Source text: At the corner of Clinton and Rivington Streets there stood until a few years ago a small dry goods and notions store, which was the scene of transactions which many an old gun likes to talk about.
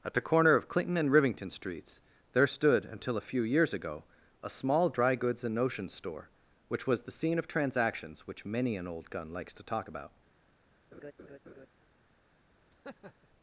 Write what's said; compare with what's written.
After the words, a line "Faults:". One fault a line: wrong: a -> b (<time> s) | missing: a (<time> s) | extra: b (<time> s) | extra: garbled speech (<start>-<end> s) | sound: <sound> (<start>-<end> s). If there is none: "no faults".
At the corner of Clinton and Rivington Streets there stood until a few years ago a small dry goods and notions store, which was the scene of transactions which many an old gun likes to talk about.
Faults:
sound: laugh (10.9-11.7 s)
sound: laugh (12.7-13.3 s)